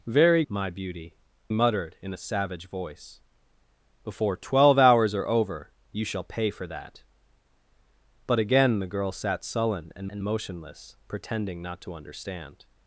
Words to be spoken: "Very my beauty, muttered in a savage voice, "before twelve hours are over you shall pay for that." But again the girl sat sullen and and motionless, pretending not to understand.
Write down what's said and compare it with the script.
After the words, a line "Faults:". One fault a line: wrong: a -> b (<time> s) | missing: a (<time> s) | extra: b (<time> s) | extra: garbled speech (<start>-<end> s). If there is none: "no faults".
"Very my beauty, muttered in a savage voice, "before twelve hours are over you shall pay for that." But again the girl sat sullen and and motionless, pretending not to understand.
Faults:
no faults